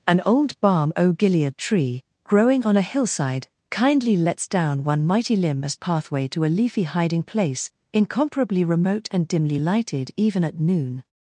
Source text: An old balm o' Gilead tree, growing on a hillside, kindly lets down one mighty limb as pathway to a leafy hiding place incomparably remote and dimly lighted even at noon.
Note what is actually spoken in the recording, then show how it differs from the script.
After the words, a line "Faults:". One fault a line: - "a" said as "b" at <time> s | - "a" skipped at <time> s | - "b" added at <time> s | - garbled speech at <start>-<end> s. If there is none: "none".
An old balm o' Gilead tree, growing on a hillside, kindly lets down one mighty limb as pathway to a leafy hiding place incomparably remote and dimly lighted even at noon.
Faults:
none